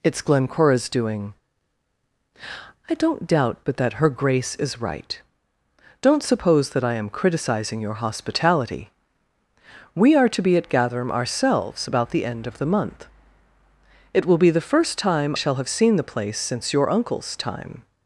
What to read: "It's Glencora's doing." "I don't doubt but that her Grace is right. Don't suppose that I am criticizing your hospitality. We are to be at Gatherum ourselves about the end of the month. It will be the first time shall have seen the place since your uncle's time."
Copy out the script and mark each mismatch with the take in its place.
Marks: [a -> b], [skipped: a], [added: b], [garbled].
"It's Glencora's doing." "I don't doubt but that her Grace is right. Don't suppose that I am criticizing your hospitality. We are to be at Gatherum ourselves about the end of the month. It will be the first time shall have seen the place since your uncle's time."